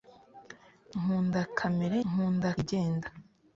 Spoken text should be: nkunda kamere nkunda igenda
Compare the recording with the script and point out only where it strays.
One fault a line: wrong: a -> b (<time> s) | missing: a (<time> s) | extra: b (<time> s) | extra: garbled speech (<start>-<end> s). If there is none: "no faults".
no faults